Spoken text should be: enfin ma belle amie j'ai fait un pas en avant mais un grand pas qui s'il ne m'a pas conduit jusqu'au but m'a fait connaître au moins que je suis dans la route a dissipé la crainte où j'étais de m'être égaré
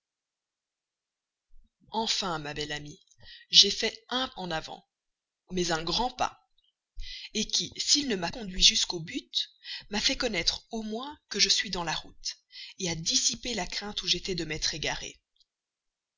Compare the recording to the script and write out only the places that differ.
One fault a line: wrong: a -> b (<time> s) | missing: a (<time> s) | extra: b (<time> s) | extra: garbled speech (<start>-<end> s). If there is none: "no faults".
missing: pas (4.3 s)
missing: pas (8.3 s)